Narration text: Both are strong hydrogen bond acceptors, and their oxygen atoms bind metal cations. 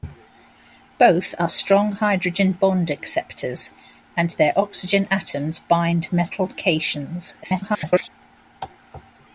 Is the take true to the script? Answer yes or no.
no